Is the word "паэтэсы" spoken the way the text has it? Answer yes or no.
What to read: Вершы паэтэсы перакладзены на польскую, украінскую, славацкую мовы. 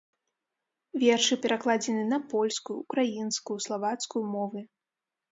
no